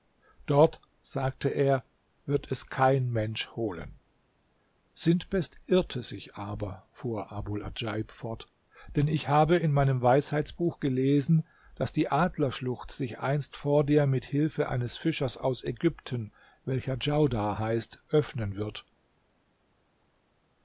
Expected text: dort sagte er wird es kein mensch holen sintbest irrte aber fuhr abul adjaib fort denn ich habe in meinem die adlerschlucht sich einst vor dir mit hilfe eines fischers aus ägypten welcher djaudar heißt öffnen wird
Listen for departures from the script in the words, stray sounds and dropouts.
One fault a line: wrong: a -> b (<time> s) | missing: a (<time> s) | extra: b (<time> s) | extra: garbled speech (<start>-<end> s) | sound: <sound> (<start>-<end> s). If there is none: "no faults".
extra: sich (6.0 s)
extra: weisheitsbuch gelesen daß (10.0 s)